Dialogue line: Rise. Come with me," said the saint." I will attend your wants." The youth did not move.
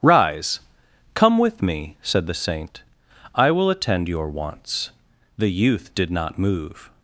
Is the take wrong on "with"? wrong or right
right